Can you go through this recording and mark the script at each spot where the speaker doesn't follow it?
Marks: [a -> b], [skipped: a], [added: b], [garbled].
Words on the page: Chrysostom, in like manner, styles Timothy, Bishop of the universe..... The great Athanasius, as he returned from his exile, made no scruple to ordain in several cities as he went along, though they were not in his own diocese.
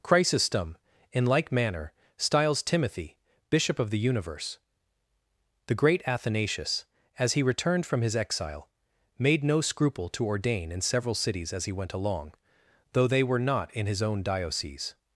Chrysostom, in like manner, styles Timothy, Bishop of the universe..... The great Athanasius, as he returned from his exile, made no scruple to ordain in several cities as he went along, though they were not in his own diocese.